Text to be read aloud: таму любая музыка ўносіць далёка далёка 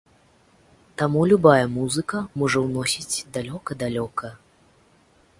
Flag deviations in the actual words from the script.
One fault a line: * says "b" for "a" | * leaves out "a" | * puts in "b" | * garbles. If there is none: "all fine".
* puts in "можа"